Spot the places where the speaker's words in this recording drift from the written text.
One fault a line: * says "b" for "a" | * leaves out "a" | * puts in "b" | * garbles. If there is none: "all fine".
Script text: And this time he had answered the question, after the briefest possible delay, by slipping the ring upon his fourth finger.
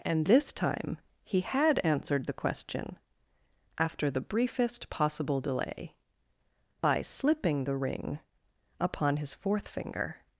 all fine